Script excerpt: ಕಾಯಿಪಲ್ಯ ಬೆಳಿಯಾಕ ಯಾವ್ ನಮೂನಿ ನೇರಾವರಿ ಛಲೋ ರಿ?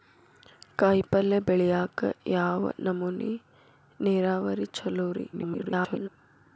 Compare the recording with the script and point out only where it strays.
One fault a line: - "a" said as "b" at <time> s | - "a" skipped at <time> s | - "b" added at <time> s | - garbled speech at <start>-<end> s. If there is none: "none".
- garbled speech at 5.3-6.1 s